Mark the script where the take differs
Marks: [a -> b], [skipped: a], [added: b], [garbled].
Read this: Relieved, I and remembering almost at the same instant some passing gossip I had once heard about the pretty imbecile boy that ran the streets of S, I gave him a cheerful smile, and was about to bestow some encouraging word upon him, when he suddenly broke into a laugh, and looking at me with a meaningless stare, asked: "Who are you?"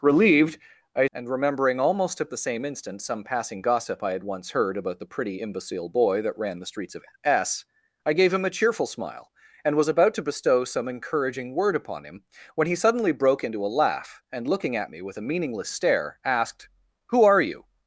Relieved, I and remembering almost at the same instant some passing gossip I had once heard about the pretty imbecile boy that ran the streets of S, I gave him a cheerful smile, and was about to bestow some encouraging word upon him, when he suddenly broke into a laugh, and looking at me with a meaningless stare, asked: "Who are you?"